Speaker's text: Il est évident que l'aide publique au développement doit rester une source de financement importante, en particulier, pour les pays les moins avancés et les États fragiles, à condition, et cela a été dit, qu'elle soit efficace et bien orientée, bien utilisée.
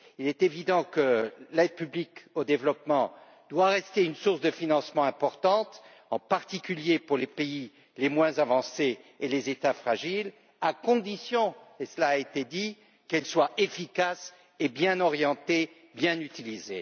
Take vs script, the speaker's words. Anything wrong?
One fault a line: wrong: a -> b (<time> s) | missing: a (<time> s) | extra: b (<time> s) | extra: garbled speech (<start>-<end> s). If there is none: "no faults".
no faults